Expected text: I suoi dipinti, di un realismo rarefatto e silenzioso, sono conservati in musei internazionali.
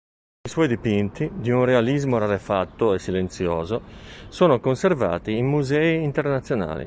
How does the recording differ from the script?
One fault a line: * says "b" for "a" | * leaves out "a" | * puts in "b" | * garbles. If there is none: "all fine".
all fine